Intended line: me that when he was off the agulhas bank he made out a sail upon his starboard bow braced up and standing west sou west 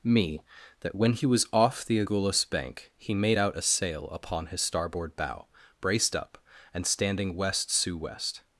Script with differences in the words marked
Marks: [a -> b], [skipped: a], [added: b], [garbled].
me that when he was off the agulhas bank he made out a sail upon his starboard bow braced up and standing west sou west